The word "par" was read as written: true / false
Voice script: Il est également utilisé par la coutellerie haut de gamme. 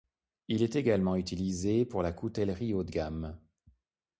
false